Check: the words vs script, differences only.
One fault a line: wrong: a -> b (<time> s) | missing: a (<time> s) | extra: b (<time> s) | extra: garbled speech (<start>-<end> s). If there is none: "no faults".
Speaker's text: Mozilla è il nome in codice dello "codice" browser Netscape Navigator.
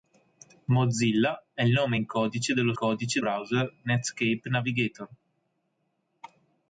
no faults